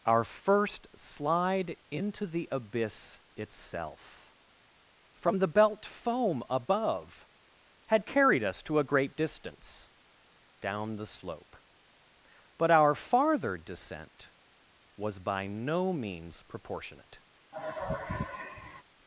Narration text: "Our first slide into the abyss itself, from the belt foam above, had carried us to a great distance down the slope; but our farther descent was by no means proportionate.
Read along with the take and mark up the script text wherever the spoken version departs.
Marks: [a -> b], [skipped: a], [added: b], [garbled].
"Our first slide into the abyss itself, from the belt foam above, had carried us to a great distance down the slope; but our farther descent was by no means proportionate.